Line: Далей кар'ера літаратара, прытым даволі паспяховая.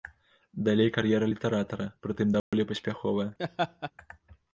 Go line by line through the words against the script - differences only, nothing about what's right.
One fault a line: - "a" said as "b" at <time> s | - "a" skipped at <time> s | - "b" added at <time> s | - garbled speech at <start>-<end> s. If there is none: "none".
none